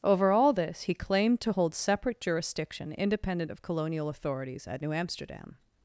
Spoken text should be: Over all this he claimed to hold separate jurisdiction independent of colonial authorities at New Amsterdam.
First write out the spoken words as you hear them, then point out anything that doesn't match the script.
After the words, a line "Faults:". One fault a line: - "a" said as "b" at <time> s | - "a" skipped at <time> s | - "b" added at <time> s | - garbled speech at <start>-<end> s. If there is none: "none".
Over all this he claimed to hold separate jurisdiction independent of colonial authorities at New Amsterdam.
Faults:
none